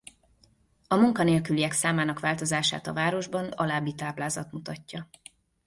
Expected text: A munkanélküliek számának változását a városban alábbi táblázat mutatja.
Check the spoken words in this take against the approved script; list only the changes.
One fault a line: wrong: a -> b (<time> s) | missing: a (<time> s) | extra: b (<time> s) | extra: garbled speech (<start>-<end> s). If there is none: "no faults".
no faults